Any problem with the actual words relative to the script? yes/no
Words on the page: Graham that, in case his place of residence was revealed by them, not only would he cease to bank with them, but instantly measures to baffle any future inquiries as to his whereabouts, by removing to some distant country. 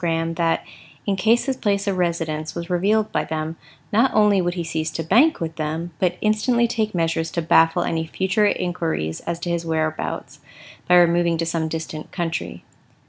yes